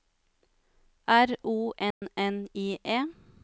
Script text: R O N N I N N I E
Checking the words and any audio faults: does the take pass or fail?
fail